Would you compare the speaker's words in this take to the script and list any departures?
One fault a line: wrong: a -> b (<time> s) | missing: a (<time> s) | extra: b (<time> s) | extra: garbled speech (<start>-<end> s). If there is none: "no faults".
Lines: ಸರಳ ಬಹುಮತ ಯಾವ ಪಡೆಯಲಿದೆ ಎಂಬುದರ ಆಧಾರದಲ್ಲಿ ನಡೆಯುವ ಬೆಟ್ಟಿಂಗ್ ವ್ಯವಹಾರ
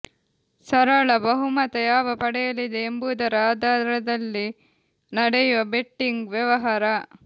no faults